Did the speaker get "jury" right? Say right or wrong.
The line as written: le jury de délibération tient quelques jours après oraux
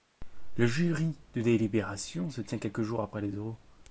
right